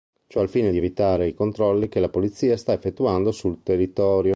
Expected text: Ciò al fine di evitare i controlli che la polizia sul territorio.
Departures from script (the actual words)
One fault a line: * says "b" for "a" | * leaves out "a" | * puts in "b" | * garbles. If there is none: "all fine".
* puts in "sta effettuando"